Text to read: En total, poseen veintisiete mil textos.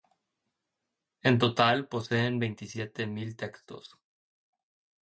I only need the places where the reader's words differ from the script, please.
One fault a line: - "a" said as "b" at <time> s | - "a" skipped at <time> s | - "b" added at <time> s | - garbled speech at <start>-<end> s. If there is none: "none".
none